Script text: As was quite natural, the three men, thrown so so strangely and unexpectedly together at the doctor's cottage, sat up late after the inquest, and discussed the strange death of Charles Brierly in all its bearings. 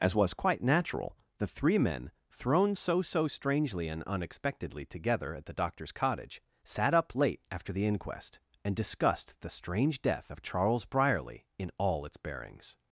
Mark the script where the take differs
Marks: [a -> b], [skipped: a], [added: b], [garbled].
As was quite natural, the three men, thrown so so strangely and unexpectedly together at the doctor's cottage, sat up late after the inquest, and discussed the strange death of Charles Brierly in all its bearings.